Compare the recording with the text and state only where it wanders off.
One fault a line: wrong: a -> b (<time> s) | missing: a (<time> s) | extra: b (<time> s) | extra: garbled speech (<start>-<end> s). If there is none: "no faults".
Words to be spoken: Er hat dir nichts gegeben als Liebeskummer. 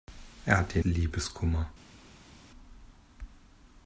missing: nichts gegeben als (0.8 s)